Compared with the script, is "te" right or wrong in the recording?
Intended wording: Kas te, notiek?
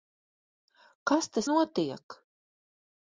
right